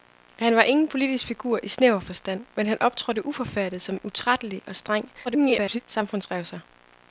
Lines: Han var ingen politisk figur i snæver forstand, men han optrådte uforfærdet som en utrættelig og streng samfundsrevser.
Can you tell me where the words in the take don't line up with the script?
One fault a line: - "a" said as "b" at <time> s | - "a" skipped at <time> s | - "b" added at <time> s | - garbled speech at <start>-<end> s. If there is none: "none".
- garbled speech at 5.2-5.8 s